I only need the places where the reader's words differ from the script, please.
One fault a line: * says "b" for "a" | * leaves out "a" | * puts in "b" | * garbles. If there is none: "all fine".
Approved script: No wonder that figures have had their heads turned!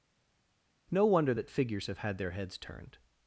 all fine